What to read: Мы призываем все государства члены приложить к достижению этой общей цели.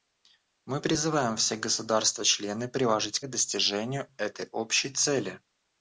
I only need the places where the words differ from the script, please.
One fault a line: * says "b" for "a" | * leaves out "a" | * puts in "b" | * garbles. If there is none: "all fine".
all fine